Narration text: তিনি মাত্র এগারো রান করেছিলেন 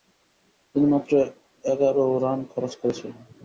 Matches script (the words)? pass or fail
fail